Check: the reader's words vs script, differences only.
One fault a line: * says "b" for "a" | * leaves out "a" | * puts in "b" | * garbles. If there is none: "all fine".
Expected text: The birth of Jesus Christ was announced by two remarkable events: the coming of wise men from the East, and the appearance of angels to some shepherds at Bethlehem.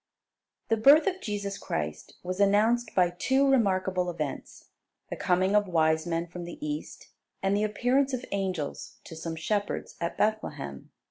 all fine